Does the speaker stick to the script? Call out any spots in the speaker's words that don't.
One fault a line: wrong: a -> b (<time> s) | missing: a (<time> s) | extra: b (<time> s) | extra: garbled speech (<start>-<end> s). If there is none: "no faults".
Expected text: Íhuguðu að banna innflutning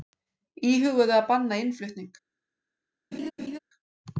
no faults